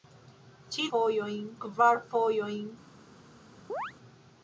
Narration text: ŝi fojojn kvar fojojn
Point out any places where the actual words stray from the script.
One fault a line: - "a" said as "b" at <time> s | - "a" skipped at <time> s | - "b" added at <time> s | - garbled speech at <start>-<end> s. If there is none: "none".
none